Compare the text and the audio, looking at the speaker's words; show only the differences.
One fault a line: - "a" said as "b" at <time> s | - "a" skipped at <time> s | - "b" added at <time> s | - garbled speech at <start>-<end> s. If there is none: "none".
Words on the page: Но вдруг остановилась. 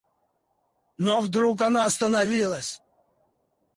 - "она" added at 1.6 s